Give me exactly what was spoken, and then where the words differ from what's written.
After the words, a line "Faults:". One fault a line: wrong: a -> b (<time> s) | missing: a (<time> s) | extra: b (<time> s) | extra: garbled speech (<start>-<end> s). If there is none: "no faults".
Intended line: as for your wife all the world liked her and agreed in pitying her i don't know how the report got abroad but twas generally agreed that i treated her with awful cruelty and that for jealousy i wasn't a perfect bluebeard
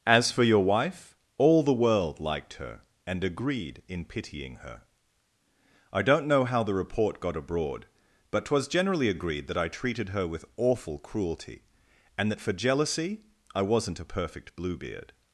as for your wife all the world liked her and agreed in pitying her i don't know how the report got abroad but twas generally agreed that i treated her with awful cruelty and that for jealousy i wasn't a perfect bluebeard
Faults:
no faults